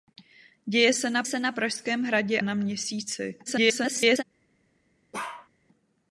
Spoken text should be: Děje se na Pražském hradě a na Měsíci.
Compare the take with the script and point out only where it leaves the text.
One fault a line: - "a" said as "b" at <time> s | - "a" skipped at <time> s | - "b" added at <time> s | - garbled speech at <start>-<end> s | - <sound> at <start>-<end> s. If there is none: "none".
- "se na" added at 1.2 s
- "a" skipped at 2.4 s
- garbled speech at 3.5-4.2 s
- bark at 5.1-5.5 s